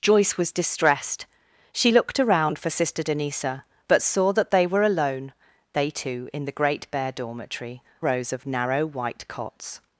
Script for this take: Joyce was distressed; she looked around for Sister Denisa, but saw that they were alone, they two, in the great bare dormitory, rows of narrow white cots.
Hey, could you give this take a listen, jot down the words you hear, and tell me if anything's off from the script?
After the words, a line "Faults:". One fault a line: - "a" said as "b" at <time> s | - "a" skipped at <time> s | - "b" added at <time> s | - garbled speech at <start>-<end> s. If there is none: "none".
Joyce was distressed; she looked around for Sister Denisa, but saw that they were alone, they two, in the great bare dormitory, rows of narrow white cots.
Faults:
none